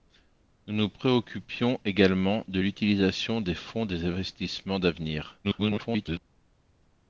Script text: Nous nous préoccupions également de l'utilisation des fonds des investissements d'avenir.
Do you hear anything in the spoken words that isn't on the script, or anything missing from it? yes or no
yes